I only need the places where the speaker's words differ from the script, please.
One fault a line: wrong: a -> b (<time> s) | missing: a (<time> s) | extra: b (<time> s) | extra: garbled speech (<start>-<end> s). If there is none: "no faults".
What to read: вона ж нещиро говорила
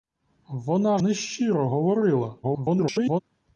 missing: ж (1.0 s)
extra: garbled speech (2.4-3.2 s)